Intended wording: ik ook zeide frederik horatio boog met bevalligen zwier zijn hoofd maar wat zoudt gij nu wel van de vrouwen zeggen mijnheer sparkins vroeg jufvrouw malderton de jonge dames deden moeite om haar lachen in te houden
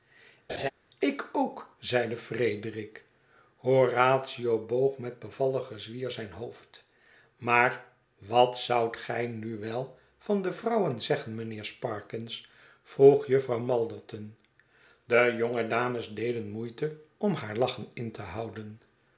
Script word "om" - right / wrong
right